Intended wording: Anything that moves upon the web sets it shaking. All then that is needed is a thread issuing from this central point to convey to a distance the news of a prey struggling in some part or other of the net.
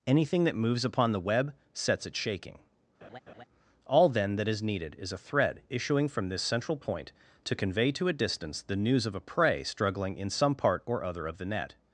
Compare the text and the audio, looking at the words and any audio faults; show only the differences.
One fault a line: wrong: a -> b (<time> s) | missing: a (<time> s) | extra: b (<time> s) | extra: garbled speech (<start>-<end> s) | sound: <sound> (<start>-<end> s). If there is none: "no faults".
sound: laugh (3.0-3.4 s)